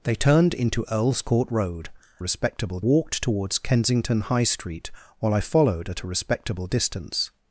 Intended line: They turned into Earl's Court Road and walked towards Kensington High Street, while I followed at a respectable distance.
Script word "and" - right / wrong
wrong